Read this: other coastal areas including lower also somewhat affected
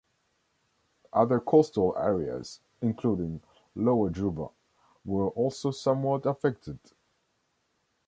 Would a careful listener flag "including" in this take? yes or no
no